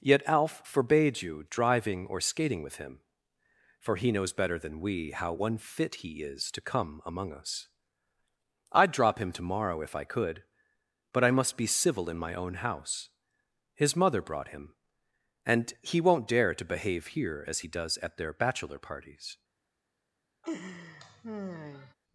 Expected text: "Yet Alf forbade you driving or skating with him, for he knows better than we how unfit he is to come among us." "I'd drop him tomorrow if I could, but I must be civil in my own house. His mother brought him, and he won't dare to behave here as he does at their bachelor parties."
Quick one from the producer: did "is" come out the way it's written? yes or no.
yes